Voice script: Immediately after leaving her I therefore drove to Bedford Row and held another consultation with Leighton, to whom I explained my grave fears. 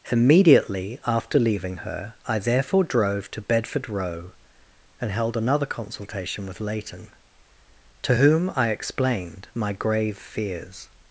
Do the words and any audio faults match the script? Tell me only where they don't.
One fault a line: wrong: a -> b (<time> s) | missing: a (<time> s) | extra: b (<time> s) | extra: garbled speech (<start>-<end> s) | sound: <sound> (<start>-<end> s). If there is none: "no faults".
no faults